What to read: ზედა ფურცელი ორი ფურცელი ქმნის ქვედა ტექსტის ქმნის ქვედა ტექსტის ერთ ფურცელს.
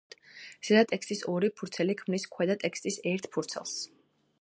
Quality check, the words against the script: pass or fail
fail